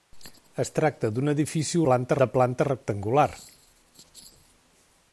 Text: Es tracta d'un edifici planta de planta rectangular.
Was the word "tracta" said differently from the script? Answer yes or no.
no